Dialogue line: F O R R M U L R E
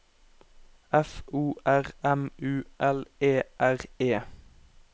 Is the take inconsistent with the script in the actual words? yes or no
yes